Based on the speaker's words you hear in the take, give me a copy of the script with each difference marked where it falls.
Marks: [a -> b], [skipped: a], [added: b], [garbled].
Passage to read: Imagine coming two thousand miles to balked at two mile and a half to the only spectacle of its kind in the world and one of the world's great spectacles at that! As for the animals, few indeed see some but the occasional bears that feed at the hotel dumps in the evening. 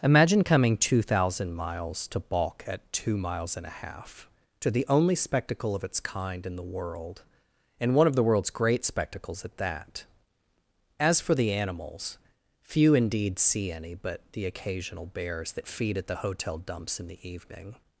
Imagine coming two thousand miles to [balked -> balk] at two [mile -> miles] and a half to the only spectacle of its kind in the world and one of the world's great spectacles at that! As for the animals, few indeed see [some -> any] but the occasional bears that feed at the hotel dumps in the evening.